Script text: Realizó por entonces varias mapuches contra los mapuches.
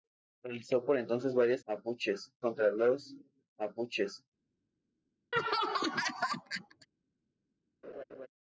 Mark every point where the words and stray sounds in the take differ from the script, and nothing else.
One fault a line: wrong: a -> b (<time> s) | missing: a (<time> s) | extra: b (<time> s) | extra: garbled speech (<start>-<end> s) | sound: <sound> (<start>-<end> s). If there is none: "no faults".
sound: laugh (5.3-6.9 s)
sound: laugh (7.8-8.3 s)